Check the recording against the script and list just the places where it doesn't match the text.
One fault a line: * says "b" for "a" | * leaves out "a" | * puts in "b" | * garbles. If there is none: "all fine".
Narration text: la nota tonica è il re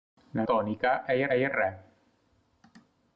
* leaves out "nota"
* puts in "il"